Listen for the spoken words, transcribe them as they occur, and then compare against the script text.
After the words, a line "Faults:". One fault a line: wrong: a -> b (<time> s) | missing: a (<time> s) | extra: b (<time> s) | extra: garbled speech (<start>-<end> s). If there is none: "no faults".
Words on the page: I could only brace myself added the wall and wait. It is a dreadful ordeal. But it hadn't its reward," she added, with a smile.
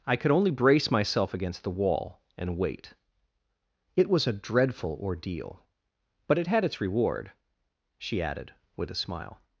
I could only brace myself against the wall and wait. It was a dreadful ordeal. But it had its reward," she added, with a smile.
Faults:
wrong: added -> against (1.3 s)
wrong: is -> was (4.1 s)
wrong: hadn't -> had (6.5 s)